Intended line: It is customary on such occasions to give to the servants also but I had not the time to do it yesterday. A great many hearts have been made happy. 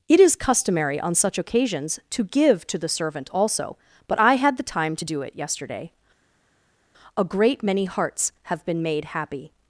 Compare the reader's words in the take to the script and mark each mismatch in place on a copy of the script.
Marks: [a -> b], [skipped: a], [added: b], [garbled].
It is customary on such occasions to give to the [servants -> servant] also but I had [skipped: not] the time to do it yesterday. A great many hearts have been made happy.